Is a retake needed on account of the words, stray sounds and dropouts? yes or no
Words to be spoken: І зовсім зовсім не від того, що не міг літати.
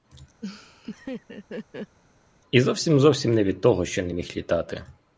yes